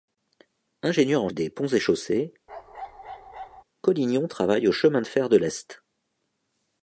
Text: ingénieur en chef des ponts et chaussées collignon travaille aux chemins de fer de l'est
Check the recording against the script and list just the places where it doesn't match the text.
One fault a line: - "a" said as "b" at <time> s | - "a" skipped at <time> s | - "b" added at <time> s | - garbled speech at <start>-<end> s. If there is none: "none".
- "chef" skipped at 1.3 s